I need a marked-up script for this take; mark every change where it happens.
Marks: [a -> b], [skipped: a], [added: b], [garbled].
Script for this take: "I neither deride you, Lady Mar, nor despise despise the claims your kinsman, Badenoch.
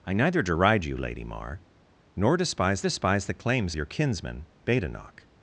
"I neither deride you, Lady Mar, nor despise despise the claims your kinsman, Badenoch.